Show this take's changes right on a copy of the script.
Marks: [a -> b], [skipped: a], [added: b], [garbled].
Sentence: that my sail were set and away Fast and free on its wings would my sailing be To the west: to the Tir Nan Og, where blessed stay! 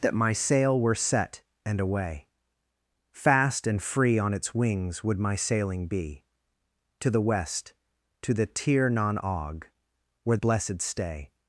that my sail were set and away Fast and free on its wings would my sailing be To the west: to the Tir Nan Og, where blessed stay!